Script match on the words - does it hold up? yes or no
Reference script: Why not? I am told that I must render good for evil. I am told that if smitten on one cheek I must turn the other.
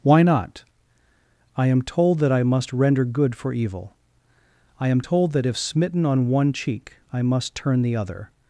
yes